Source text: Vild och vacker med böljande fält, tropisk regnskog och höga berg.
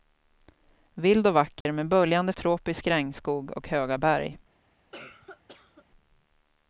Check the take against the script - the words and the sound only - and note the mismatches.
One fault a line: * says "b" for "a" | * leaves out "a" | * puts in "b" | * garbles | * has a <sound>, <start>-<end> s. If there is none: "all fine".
* has a dropout, 1.6-1.7 s
* leaves out "fält"
* has a cough, 4.9-5.9 s